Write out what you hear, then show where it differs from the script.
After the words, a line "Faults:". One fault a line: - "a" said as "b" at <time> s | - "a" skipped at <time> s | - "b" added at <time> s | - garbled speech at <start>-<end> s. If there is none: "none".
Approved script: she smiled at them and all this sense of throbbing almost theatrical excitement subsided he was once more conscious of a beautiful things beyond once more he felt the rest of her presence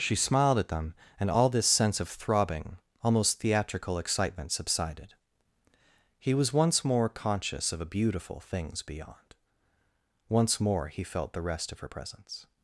she smiled at them and all this sense of throbbing almost theatrical excitement subsided he was once more conscious of a beautiful things beyond once more he felt the rest of her presence
Faults:
none